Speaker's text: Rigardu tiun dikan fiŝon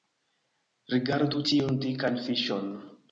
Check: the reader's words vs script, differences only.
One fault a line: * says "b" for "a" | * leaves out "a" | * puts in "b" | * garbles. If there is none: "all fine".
all fine